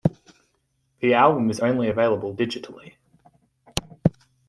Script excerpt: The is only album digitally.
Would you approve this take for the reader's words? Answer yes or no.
no